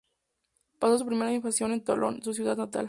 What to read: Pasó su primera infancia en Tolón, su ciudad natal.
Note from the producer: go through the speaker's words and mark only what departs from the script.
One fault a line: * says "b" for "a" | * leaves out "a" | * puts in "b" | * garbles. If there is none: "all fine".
all fine